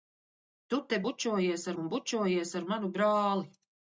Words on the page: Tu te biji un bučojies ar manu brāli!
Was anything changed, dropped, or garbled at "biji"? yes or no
yes